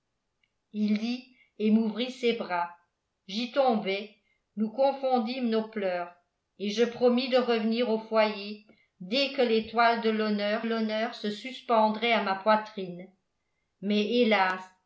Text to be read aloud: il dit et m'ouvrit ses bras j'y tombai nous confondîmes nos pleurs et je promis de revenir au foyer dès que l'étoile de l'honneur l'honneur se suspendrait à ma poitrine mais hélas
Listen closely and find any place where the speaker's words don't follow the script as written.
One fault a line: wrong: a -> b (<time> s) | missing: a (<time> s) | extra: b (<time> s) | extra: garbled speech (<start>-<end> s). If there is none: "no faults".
no faults